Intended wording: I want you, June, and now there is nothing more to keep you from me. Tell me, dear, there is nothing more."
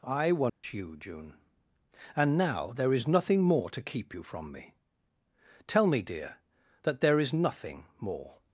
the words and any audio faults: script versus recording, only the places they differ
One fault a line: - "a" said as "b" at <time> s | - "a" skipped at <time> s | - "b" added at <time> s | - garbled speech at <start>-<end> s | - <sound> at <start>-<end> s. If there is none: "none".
- dropout at 0.5-0.6 s
- "that" added at 6.8 s